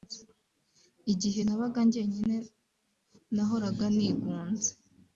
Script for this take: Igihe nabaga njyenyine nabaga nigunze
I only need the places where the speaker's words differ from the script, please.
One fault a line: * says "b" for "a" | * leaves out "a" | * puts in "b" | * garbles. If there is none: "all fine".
* says "nahoraga" for "nabaga"